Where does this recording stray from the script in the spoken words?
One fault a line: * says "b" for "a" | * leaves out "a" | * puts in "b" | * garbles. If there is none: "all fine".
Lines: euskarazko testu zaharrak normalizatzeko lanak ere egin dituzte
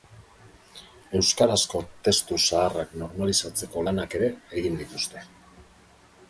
all fine